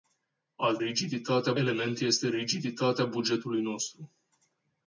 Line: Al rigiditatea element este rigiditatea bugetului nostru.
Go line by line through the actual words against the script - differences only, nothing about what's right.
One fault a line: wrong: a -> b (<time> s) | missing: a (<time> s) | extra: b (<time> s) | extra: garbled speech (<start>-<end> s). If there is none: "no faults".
no faults